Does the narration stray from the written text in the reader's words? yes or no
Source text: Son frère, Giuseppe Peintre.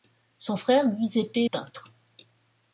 no